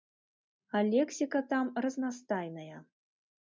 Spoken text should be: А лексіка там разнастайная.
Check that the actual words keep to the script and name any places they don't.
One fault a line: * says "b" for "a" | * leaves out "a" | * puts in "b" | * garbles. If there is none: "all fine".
all fine